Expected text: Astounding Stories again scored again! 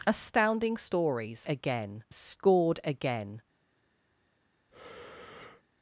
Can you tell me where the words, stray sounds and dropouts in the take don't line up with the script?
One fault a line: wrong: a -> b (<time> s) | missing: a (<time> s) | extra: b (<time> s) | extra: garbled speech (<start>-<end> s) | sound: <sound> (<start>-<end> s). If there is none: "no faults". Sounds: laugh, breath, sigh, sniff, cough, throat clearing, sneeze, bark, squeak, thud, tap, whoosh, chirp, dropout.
sound: breath (4.7-5.6 s)